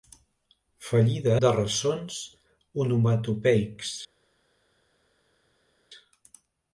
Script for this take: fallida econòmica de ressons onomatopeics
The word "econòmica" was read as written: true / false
false